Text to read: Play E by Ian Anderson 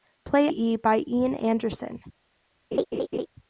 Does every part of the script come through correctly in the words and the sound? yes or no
no